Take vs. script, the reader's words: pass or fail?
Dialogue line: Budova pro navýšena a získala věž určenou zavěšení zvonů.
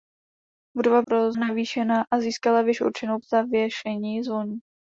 pass